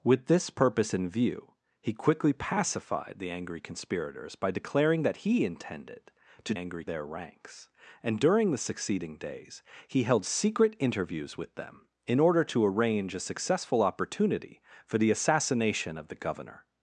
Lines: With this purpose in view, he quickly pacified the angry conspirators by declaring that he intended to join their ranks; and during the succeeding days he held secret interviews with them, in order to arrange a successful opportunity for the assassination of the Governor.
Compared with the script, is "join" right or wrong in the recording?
wrong